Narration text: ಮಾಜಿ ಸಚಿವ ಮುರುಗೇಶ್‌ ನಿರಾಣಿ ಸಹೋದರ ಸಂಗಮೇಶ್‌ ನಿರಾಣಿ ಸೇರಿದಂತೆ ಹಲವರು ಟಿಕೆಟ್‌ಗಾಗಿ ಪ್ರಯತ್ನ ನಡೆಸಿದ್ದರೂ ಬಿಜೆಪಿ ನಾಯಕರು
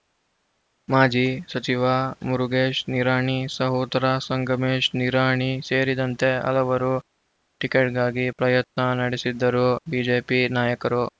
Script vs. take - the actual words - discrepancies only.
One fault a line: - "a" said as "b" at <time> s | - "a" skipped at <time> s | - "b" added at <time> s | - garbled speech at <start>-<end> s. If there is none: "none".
none